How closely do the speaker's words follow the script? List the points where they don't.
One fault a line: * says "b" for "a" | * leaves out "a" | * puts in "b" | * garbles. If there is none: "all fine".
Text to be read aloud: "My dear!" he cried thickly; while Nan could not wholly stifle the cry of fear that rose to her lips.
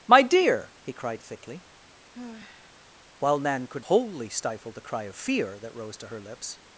* leaves out "not"